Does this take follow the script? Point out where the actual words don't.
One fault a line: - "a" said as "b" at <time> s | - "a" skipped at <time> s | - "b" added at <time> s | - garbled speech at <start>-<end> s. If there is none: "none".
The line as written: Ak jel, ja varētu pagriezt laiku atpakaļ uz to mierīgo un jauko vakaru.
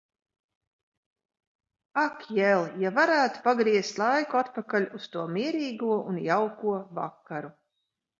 none